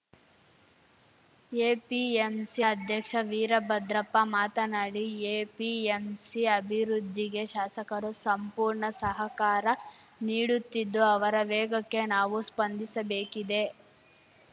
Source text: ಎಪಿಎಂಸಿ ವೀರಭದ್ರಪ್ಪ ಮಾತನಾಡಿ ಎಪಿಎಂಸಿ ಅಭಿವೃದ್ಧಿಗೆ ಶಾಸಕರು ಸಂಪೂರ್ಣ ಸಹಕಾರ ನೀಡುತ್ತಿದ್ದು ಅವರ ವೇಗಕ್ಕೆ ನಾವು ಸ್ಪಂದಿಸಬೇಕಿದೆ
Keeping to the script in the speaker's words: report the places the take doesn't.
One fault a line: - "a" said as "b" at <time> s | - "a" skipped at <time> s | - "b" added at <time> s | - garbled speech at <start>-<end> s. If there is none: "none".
- "ಅಧ್ಯಕ್ಷ" added at 2.7 s